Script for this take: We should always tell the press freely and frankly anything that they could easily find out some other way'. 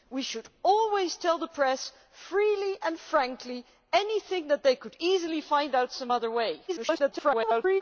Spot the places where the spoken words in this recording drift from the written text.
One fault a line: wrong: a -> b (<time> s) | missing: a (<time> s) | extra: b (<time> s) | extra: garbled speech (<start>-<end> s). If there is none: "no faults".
extra: garbled speech (6.7-7.8 s)